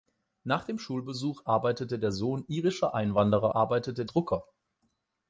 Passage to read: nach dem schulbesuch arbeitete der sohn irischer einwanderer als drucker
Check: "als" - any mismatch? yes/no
yes